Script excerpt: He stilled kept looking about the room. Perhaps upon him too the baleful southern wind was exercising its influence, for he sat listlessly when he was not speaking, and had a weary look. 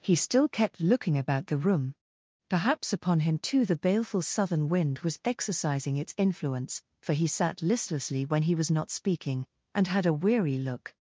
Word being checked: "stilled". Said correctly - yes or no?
no